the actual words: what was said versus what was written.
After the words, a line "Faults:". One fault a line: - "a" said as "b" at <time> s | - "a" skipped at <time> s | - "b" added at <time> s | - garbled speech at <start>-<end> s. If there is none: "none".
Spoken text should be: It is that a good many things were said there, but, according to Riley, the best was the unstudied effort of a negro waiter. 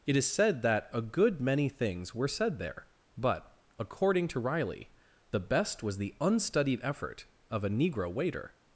It is said that a good many things were said there, but, according to Riley, the best was the unstudied effort of a negro waiter.
Faults:
- "said" added at 0.3 s